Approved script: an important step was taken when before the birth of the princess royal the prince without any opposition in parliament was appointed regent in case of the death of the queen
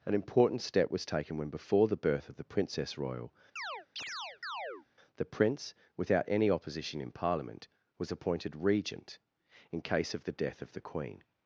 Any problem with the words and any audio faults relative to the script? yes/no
yes